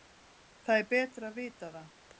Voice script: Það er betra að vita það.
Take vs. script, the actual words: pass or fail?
pass